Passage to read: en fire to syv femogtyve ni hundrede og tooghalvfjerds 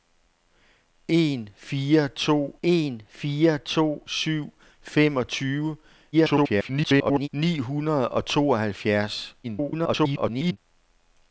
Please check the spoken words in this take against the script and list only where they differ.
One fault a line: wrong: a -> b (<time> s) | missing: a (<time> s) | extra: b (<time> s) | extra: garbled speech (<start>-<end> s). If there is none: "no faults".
extra: en fire to (2.6 s)
extra: garbled speech (6.1-7.3 s)
extra: garbled speech (9.4-10.6 s)